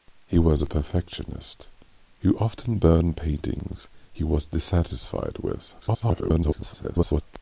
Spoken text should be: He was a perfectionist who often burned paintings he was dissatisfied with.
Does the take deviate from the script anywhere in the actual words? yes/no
yes